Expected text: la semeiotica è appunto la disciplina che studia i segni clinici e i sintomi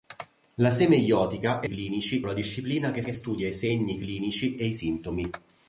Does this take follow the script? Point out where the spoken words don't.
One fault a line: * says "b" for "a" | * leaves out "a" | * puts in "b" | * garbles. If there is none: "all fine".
* says "clinici" for "appunto"
* puts in "che"